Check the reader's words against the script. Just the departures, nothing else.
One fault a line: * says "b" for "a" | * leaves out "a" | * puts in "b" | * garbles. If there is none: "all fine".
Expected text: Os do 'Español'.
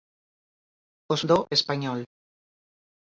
all fine